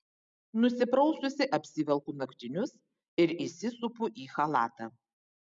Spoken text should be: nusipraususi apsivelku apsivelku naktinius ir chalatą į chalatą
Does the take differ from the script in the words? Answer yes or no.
yes